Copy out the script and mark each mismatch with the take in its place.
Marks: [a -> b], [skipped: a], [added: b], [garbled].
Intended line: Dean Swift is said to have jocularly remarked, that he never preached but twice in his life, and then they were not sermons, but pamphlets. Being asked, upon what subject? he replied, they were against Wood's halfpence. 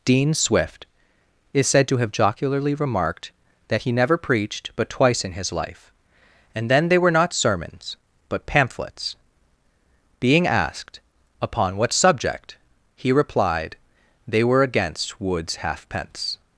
Dean Swift is said to have jocularly remarked, that he never preached but twice in his life, and then they were not sermons, but pamphlets. Being asked, upon what subject? he replied, they were against Wood's halfpence.